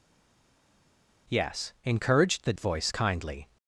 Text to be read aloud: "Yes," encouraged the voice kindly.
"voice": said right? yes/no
yes